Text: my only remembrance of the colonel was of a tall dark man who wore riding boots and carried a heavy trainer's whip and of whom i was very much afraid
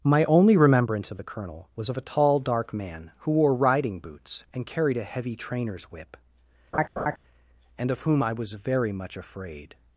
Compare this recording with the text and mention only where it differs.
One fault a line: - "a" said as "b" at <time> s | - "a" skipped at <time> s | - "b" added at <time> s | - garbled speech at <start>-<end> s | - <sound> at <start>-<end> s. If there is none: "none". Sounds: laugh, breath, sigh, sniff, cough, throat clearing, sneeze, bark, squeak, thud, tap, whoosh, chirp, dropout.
- laugh at 6.7-7.2 s